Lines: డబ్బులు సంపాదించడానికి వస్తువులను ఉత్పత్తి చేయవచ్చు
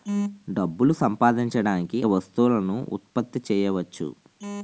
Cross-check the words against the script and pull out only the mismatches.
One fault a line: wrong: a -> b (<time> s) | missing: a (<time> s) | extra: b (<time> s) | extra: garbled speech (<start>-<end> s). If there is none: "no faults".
no faults